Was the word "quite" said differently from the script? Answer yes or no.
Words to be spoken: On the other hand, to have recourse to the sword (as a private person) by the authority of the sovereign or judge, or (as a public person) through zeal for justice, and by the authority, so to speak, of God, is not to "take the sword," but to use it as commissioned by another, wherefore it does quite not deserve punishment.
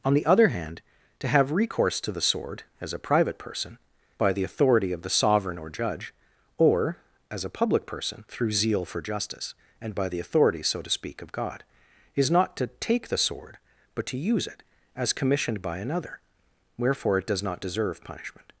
yes